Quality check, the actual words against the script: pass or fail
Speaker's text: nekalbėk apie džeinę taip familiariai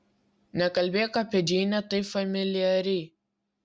pass